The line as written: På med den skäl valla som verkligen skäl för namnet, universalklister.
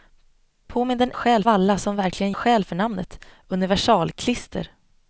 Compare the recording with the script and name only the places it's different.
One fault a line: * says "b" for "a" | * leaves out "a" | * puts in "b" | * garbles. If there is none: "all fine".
all fine